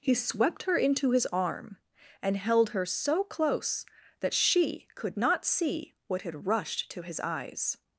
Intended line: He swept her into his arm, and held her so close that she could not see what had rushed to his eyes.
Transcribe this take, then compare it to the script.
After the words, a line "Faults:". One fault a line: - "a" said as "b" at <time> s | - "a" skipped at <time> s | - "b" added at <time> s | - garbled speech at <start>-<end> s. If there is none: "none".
He swept her into his arm, and held her so close that she could not see what had rushed to his eyes.
Faults:
none